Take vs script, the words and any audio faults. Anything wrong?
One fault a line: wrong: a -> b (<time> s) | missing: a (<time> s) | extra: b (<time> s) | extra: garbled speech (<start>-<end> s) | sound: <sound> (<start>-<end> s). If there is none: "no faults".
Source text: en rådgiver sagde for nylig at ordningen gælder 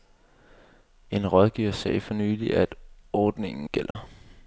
sound: dropout (3.9-4.0 s)